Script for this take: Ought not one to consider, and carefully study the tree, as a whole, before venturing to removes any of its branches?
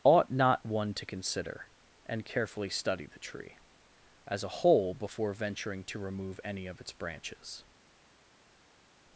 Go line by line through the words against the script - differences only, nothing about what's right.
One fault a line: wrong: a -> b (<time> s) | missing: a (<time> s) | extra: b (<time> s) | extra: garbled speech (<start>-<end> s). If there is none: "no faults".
wrong: removes -> remove (6.0 s)